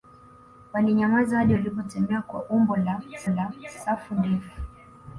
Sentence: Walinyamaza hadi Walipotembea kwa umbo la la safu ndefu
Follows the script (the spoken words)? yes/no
yes